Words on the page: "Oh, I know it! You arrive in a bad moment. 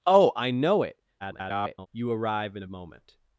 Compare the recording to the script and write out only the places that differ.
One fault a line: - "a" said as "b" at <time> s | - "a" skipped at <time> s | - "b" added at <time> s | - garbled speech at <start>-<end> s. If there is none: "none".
- garbled speech at 1.2-1.9 s
- "a bad" skipped at 2.6 s